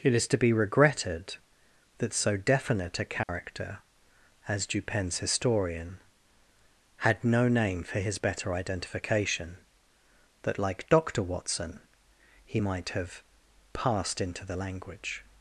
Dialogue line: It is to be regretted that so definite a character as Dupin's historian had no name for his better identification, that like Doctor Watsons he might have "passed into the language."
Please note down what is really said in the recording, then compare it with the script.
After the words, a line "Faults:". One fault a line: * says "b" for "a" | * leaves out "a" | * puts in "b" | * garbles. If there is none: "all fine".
It is to be regretted that so definite a character as Dupin's historian had no name for his better identification, that like Doctor Watson he might have "passed into the language."
Faults:
* says "Watson" for "Watsons"